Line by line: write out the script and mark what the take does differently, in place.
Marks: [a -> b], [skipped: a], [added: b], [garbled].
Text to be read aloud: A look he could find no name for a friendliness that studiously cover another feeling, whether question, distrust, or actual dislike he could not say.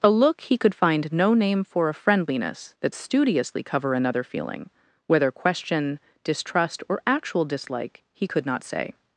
A look he could find no name for a friendliness that studiously cover another feeling, whether question, distrust, or actual dislike he could not say.